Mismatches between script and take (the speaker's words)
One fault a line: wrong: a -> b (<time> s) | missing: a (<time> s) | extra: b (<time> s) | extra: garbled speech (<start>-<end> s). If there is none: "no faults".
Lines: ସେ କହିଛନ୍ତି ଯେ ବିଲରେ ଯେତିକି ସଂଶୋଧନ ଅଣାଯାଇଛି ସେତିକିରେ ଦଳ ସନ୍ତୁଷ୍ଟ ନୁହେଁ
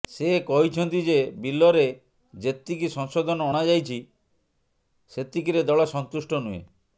no faults